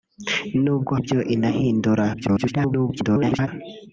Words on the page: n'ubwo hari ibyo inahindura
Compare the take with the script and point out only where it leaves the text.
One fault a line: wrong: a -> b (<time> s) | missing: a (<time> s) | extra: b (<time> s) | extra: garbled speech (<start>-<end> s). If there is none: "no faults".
missing: hari (0.9 s)
extra: garbled speech (2.1-3.5 s)